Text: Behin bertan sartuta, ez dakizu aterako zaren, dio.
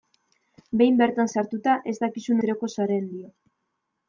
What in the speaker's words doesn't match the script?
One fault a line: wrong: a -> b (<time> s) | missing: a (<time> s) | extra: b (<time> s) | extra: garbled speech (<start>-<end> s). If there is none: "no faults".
no faults